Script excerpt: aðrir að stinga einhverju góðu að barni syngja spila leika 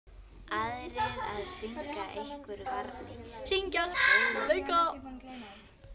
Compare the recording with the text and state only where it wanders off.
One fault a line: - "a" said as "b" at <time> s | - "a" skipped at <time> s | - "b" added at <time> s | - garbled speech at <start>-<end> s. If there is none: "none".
- "góðu að" skipped at 2.7 s
- "spila" said as "góðu" at 4.0 s